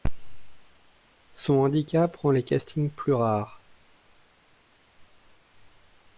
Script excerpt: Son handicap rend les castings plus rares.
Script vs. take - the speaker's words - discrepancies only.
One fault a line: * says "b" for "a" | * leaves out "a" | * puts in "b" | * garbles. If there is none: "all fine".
all fine